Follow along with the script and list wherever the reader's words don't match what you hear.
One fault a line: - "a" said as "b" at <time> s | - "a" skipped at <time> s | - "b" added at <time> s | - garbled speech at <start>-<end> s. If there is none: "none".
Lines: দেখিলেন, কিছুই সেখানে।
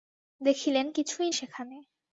none